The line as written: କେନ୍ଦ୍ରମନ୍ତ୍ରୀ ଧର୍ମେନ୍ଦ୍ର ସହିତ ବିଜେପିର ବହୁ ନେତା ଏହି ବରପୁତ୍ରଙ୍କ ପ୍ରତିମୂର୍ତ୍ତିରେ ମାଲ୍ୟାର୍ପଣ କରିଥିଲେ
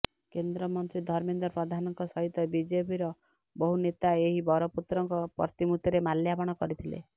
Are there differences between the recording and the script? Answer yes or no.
yes